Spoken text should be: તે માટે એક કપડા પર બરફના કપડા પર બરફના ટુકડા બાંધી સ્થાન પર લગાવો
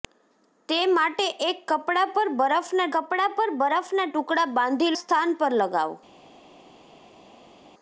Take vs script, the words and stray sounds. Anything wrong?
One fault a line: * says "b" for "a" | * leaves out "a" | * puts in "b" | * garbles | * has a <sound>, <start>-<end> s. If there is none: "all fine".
all fine